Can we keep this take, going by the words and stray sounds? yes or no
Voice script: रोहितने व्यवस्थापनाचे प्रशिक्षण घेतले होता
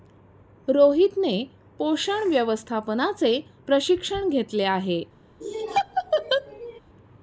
no